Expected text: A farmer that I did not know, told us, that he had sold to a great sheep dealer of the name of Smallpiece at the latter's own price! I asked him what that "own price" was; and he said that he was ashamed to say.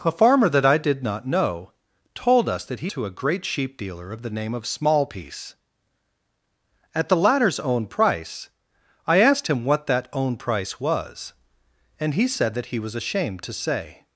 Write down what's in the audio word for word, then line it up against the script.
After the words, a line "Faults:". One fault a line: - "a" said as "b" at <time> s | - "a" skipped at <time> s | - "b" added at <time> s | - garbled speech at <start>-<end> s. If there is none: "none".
A farmer that I did not know, told us, that he to a great sheep dealer of the name of Smallpiece at the latter's own price! I asked him what that "own price" was; and he said that he was ashamed to say.
Faults:
- "had sold" skipped at 2.9 s